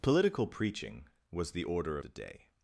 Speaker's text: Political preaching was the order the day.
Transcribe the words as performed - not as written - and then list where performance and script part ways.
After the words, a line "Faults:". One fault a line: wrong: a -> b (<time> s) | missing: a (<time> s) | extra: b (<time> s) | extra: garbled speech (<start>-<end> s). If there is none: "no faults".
Political preaching was the order the day.
Faults:
no faults